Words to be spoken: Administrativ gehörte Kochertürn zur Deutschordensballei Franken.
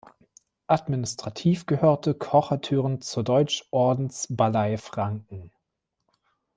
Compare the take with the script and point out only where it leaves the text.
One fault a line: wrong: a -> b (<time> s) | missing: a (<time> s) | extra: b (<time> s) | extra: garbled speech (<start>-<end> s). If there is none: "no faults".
no faults